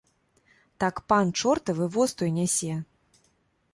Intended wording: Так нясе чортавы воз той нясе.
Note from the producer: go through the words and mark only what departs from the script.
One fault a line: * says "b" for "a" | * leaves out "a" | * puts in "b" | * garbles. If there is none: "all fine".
* says "пан" for "нясе"